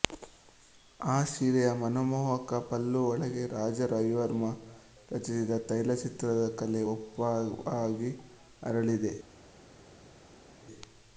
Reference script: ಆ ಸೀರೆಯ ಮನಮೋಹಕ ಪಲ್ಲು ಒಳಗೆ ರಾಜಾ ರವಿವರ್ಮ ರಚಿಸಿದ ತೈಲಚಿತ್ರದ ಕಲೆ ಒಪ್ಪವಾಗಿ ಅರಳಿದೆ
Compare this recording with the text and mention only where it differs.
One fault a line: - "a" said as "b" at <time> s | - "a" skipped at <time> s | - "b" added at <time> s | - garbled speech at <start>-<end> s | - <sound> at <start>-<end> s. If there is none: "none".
none